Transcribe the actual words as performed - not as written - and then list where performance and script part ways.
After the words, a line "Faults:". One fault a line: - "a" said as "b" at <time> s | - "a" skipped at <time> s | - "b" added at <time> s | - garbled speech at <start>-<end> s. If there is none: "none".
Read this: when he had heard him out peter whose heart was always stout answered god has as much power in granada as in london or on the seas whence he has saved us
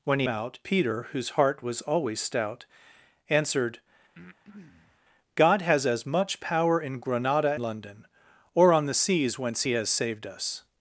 when he out peter whose heart was always stout answered god has as much power in granada london or on the seas whence he has saved us
Faults:
- "had heard him" skipped at 0.3 s
- "as in" skipped at 7.5 s